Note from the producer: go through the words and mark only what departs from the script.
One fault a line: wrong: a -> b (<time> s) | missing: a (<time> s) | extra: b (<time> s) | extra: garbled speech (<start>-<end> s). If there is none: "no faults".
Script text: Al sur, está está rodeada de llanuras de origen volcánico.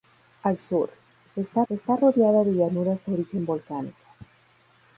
no faults